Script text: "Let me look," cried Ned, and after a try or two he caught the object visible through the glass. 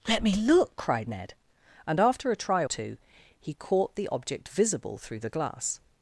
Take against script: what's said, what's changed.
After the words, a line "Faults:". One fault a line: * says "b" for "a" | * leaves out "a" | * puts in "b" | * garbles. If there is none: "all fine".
"Let me look," cried Ned, and after a try two he caught the object visible through the glass.
Faults:
* leaves out "or"